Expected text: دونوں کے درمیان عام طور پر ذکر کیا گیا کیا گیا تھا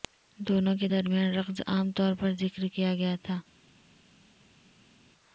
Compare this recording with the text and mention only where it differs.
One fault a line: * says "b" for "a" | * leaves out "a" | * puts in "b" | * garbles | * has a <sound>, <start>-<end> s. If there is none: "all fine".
* puts in "رقص"
* leaves out "کیا گیا"